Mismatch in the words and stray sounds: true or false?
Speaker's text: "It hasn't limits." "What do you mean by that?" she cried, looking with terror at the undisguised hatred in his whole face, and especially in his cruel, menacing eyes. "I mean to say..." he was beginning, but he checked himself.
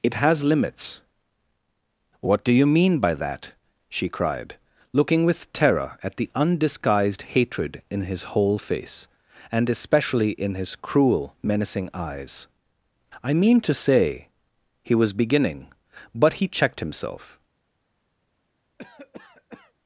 true